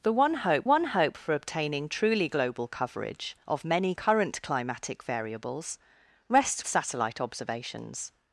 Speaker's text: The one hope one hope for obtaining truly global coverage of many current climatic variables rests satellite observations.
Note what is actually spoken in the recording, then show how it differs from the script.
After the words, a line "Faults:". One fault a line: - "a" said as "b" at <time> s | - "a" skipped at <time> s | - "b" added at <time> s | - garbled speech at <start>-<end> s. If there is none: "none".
The one hope one hope for obtaining truly global coverage of many current climatic variables rests satellite observations.
Faults:
none